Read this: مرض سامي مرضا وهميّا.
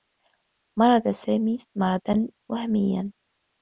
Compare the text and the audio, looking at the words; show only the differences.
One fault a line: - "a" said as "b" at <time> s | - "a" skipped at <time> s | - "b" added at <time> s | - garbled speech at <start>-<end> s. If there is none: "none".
none